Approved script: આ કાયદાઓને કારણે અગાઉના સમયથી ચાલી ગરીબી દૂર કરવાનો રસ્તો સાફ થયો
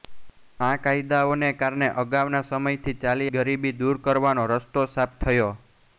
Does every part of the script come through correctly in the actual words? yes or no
yes